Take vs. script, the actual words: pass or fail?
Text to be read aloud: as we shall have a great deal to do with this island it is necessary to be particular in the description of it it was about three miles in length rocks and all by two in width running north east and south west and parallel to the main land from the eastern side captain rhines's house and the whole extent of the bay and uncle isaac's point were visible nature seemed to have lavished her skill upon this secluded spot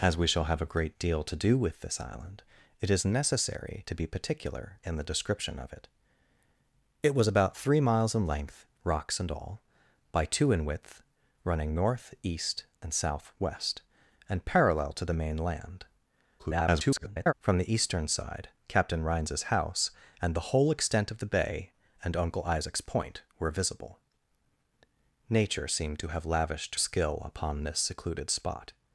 fail